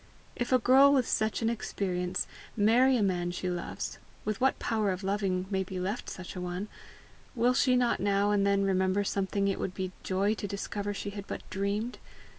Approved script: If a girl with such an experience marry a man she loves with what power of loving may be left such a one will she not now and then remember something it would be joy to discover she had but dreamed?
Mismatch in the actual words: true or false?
false